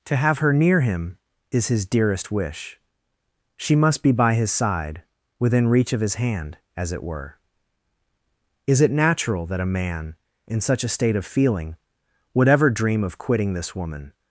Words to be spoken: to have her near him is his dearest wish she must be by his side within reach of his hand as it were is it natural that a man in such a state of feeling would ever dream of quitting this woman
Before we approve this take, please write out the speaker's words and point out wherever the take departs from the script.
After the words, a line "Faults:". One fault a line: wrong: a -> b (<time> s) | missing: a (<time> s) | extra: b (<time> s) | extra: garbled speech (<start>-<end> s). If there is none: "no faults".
to have her near him is his dearest wish she must be by his side within reach of his hand as it were is it natural that a man in such a state of feeling would ever dream of quitting this woman
Faults:
no faults